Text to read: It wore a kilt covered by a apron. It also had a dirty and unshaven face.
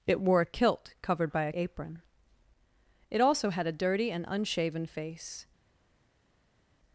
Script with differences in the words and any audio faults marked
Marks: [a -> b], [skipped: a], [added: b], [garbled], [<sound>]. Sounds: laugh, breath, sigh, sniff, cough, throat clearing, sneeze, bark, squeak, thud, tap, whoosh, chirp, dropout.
It wore a kilt covered by a apron. It also had a dirty and unshaven face.